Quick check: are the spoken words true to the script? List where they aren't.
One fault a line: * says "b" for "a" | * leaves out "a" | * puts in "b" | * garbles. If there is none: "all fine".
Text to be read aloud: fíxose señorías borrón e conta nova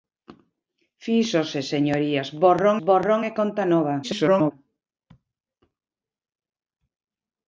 * puts in "borrón"
* garbles